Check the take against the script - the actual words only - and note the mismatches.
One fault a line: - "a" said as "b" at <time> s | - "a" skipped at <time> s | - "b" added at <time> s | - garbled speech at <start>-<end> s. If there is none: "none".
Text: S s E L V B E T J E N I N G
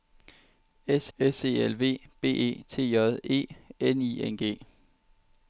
none